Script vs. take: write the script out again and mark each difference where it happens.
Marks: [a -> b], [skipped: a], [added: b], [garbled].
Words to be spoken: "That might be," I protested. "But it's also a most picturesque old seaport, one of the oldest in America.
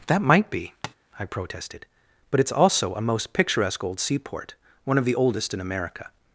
"That might be," I protested. "But it's also a most picturesque old seaport, one of the oldest in America.